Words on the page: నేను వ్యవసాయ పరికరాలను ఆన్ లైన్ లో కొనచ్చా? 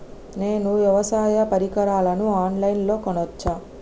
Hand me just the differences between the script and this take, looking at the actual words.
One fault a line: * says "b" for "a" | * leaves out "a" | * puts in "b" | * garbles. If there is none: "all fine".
all fine